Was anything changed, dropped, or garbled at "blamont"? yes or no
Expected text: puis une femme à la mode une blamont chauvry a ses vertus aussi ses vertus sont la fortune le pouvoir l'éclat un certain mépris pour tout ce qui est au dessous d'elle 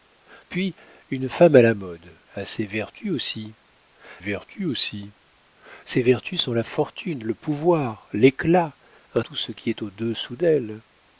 yes